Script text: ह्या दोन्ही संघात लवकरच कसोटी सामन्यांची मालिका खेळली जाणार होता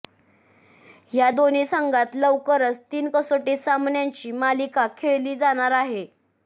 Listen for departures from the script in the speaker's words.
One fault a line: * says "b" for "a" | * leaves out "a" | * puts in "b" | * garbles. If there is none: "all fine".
* puts in "तीन"
* says "आहे" for "होता"